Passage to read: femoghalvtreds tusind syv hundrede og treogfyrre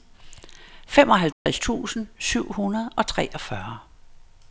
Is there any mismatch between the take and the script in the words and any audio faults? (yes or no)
yes